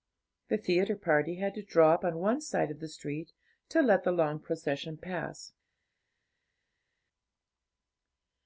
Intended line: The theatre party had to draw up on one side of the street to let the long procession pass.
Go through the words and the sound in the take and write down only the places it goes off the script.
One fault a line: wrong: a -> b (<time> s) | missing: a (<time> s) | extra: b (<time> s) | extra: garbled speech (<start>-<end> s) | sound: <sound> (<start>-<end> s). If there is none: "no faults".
no faults